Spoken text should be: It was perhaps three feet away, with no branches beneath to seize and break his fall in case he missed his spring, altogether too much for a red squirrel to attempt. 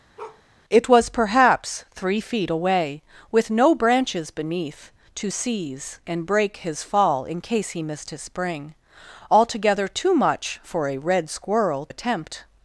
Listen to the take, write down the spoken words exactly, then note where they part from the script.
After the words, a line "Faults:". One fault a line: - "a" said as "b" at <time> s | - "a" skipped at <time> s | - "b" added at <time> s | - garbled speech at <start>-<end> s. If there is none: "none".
It was perhaps three feet away, with no branches beneath to seize and break his fall in case he missed his spring, altogether too much for a red squirrel attempt.
Faults:
- "to" skipped at 11.8 s